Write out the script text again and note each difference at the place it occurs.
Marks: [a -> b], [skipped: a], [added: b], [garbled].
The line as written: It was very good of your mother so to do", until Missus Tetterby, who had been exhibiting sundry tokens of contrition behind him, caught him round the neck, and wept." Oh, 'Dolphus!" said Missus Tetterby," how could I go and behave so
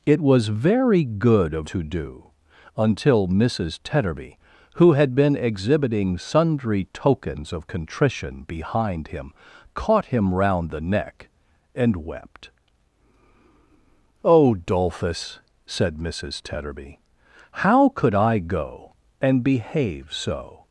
It was very good of [skipped: your mother so] to do", until Missus Tetterby, who had been exhibiting sundry tokens of contrition behind him, caught him round the neck, and wept." Oh, 'Dolphus!" said Missus Tetterby," how could I go and behave so